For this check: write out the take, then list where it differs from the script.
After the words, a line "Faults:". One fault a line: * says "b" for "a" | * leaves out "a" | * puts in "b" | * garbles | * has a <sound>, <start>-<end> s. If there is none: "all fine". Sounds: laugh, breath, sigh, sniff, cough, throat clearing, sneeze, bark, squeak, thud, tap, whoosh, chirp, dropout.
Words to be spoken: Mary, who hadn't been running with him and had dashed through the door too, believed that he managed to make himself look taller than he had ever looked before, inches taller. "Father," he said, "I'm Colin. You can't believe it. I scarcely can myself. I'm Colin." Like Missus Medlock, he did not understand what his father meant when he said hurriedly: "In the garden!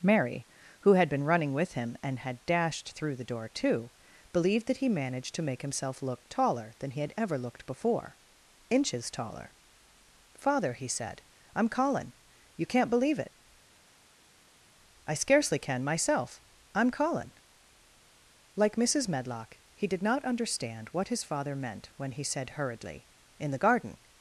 Mary, who had been running with him and had dashed through the door too, believed that he managed to make himself look taller than he had ever looked before, inches taller. "Father," he said, "I'm Colin. You can't believe it. I scarcely can myself. I'm Colin." Like Missus Medlock, he did not understand what his father meant when he said hurriedly: "In the garden!
Faults:
* says "had" for "hadn't"